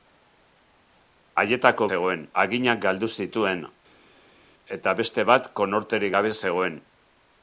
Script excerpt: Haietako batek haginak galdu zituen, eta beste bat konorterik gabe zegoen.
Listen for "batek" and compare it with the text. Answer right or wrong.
wrong